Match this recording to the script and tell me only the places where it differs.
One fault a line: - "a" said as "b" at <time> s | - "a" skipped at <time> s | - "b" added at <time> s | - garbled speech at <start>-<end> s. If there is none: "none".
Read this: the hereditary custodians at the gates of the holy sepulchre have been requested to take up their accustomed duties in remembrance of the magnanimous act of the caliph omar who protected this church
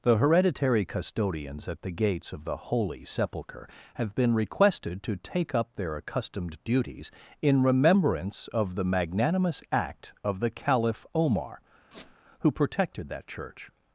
- "this" said as "that" at 13.1 s